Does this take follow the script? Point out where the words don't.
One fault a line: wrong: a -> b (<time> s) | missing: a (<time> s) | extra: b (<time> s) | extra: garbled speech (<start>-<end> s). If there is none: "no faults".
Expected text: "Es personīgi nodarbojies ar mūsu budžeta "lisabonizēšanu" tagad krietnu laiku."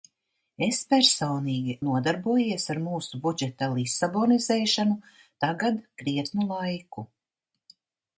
no faults